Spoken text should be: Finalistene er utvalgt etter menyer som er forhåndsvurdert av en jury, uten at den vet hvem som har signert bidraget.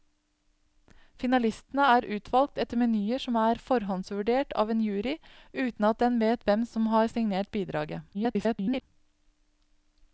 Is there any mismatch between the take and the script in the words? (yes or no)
yes